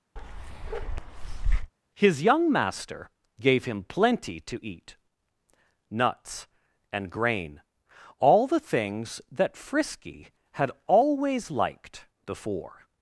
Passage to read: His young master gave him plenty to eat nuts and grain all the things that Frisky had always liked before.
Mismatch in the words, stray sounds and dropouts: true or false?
true